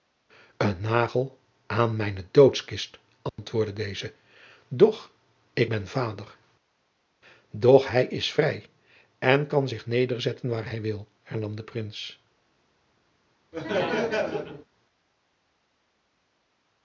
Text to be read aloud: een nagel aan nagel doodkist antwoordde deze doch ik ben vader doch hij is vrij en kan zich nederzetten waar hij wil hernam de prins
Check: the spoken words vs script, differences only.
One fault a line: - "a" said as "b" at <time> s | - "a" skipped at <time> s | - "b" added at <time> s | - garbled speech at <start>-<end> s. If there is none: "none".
- "nagel" said as "mijne" at 1.9 s